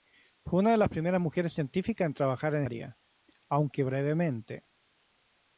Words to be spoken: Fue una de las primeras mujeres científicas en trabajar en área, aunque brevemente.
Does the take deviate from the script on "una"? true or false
false